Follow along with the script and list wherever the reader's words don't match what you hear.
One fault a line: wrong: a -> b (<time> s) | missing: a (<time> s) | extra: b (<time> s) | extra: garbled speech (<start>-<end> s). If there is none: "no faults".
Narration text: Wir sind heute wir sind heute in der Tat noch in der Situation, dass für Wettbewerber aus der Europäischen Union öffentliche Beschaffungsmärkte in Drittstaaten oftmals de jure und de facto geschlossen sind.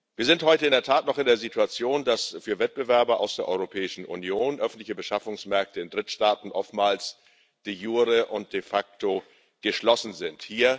missing: wir sind heute (0.7 s)